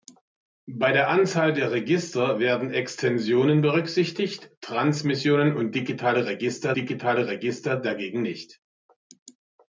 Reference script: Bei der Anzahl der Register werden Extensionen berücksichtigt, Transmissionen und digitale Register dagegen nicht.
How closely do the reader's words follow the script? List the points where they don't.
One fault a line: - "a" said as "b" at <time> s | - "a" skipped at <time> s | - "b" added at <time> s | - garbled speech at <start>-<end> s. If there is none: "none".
- "digitale Register" added at 6.8 s